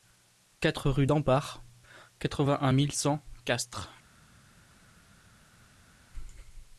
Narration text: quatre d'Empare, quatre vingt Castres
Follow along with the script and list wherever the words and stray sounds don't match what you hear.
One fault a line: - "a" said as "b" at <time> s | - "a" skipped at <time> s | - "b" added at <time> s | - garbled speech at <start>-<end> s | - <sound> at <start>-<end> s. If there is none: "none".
- "rue" added at 0.9 s
- "un mille cent" added at 2.6 s